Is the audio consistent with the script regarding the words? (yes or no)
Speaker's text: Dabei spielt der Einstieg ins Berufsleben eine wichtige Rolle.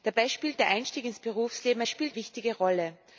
no